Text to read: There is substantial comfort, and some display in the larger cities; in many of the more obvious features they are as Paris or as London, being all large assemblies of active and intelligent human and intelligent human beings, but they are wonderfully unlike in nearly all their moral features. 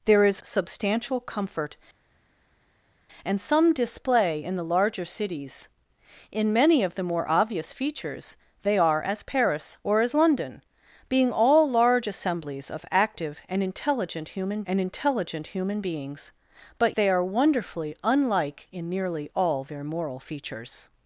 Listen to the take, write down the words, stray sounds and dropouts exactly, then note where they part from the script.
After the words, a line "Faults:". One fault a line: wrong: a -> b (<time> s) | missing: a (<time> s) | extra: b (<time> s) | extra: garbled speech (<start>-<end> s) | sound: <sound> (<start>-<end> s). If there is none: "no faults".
There is substantial comfort, and some display in the larger cities; in many of the more obvious features they are as Paris or as London, being all large assemblies of active and intelligent human and intelligent human beings, but they are wonderfully unlike in nearly all their moral features.
Faults:
no faults